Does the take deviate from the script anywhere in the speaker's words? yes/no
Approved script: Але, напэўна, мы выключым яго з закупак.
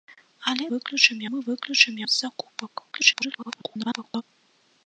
yes